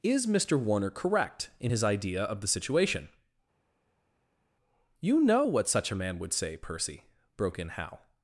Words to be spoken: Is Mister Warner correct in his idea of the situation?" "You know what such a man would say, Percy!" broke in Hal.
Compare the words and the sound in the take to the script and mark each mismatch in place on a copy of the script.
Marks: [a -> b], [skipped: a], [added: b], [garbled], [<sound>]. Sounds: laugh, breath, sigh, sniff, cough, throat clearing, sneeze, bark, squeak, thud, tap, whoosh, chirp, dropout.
Is Mister Warner correct in his idea of the situation?" "You know what such a man would say, Percy!" broke in Hal.